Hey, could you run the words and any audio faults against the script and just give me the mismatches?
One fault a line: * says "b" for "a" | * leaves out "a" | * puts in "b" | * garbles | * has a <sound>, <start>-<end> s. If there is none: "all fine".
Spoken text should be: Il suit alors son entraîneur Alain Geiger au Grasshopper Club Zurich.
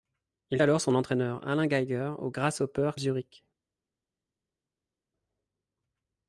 * leaves out "suit"
* leaves out "Club"